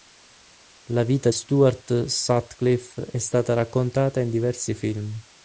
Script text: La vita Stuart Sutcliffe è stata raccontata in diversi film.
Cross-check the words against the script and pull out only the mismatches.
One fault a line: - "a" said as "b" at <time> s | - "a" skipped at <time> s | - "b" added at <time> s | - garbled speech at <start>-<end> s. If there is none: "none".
none